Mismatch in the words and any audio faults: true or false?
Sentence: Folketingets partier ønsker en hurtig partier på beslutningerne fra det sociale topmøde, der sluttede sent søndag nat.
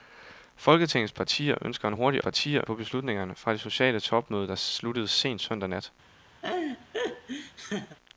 true